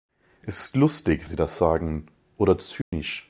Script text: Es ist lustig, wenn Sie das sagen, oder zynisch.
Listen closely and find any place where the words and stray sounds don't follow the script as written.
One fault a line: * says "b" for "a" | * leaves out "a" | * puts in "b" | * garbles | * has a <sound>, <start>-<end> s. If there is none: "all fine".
* leaves out "wenn"
* has a dropout, 2.8-2.9 s